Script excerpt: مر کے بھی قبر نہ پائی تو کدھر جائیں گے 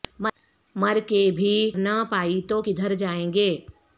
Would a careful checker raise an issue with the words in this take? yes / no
yes